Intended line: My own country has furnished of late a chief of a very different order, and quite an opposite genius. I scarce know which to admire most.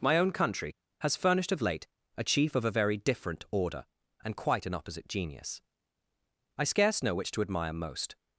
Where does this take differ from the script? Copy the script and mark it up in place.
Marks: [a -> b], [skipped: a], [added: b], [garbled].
My own country has furnished of late a chief of a very different order, and quite an opposite genius. I scarce know which to admire most.